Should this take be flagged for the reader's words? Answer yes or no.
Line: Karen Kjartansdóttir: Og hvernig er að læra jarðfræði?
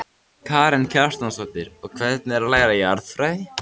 no